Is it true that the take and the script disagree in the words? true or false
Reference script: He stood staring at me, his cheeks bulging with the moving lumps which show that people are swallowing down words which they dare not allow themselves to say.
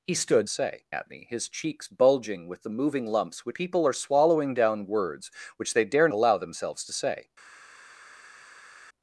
true